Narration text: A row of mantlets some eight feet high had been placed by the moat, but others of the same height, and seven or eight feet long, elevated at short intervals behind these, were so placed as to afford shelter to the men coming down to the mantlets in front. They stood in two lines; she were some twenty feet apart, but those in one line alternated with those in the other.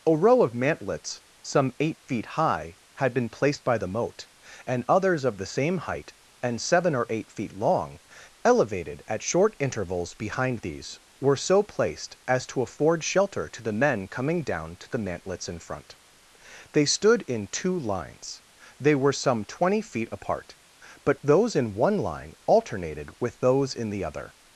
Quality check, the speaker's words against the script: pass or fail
fail